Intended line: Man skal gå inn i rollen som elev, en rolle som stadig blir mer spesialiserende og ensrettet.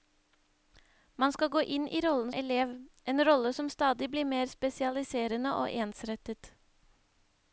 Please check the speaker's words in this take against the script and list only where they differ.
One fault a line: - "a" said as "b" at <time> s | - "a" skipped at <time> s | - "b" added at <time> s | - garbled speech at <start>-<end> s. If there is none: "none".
- "som" skipped at 2.3 s